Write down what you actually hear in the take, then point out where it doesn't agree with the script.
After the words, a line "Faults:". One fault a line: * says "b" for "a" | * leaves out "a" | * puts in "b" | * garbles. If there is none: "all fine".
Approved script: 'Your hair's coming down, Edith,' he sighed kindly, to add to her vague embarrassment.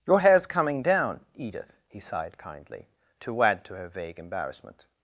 'Your hair's coming down, Edith,' he sighed kindly, to add to her vague embarrassment.
Faults:
all fine